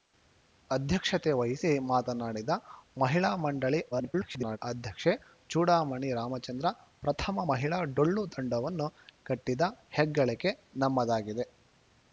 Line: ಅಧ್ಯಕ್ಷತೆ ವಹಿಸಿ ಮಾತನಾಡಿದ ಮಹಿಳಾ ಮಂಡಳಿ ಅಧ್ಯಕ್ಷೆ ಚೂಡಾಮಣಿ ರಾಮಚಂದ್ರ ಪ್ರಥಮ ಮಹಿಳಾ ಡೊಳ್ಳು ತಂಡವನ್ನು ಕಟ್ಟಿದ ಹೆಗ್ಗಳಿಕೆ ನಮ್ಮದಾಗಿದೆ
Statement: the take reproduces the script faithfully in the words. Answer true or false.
false